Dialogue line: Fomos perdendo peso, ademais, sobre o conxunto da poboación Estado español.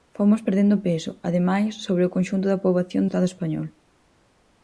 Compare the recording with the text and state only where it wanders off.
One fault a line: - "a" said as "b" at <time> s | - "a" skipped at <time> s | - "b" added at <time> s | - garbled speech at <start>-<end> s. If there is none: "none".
none